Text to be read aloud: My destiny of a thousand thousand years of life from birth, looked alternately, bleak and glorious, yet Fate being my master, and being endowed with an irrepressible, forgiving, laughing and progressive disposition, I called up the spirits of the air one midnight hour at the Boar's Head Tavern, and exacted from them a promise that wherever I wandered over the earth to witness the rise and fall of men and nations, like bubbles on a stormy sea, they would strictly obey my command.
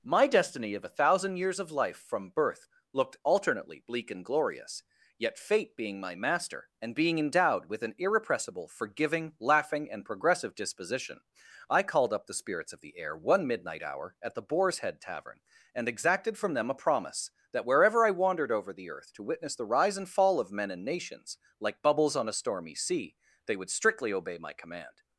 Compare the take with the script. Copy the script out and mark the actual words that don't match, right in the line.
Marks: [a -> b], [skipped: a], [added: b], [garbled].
My destiny of a thousand [skipped: thousand] years of life from birth, looked alternately, bleak and glorious, yet Fate being my master, and being endowed with an irrepressible, forgiving, laughing and progressive disposition, I called up the spirits of the air one midnight hour at the Boar's Head Tavern, and exacted from them a promise that wherever I wandered over the earth to witness the rise and fall of men and nations, like bubbles on a stormy sea, they would strictly obey my command.